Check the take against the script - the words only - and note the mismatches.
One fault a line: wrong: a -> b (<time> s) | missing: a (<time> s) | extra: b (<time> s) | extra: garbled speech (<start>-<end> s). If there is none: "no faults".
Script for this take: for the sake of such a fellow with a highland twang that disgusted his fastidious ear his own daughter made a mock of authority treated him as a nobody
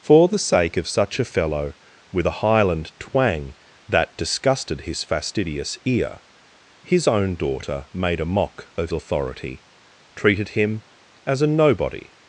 no faults